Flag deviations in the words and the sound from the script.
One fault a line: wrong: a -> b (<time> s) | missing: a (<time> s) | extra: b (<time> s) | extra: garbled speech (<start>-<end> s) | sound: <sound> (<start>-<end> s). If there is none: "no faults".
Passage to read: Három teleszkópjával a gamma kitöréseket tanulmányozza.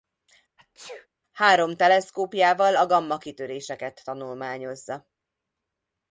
sound: sneeze (0.6-1.1 s)